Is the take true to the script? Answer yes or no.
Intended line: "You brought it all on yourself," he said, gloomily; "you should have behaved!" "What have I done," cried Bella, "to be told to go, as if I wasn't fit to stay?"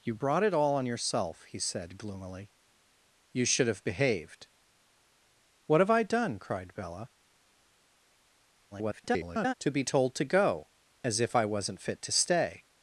no